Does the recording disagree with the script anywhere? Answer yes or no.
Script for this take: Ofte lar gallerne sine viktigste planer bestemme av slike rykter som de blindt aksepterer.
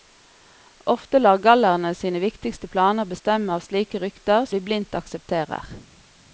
yes